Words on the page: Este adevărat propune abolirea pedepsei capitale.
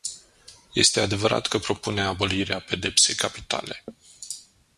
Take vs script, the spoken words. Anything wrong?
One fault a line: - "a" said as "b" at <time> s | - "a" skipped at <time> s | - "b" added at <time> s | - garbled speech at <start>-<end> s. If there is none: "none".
- "că" added at 1.5 s